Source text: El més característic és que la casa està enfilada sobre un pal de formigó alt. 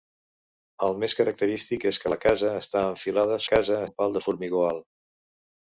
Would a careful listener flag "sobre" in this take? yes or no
yes